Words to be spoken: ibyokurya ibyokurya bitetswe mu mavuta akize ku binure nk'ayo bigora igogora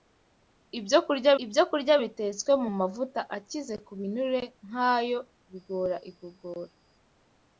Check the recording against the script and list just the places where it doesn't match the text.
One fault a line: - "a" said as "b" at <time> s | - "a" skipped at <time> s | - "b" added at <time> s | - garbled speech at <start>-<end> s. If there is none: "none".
none